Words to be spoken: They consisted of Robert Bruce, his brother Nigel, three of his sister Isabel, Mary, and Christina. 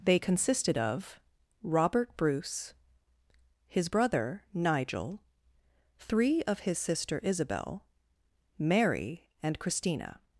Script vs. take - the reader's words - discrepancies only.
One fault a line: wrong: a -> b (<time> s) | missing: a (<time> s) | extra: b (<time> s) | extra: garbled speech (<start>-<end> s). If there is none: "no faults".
no faults